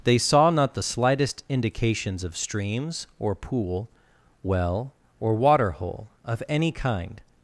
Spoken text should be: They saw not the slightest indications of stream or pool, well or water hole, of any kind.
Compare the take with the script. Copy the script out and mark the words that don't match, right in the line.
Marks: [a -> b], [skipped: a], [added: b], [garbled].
They saw not the slightest indications of [stream -> streams] or pool, well or water hole, of any kind.